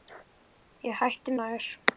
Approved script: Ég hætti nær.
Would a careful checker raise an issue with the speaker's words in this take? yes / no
no